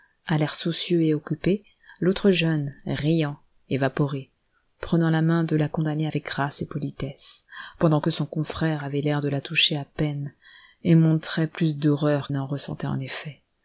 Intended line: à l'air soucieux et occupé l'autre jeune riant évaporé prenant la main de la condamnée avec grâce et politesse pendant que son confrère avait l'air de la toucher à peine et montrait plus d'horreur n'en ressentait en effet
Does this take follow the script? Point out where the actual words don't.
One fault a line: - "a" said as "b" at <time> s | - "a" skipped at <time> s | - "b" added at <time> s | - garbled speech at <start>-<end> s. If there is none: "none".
none